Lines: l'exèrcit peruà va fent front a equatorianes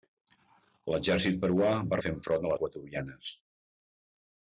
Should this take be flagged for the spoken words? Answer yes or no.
no